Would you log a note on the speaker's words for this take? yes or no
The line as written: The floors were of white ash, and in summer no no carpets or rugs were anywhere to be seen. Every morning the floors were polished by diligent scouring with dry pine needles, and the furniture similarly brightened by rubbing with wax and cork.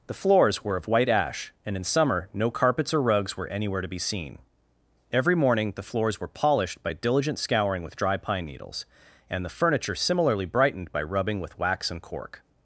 yes